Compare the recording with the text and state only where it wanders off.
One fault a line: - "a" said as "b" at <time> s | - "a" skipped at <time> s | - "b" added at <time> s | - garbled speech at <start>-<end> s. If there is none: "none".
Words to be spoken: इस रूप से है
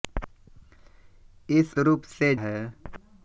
none